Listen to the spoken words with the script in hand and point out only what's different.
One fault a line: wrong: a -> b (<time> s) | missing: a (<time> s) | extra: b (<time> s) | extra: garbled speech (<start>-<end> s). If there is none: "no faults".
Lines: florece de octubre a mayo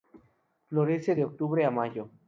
no faults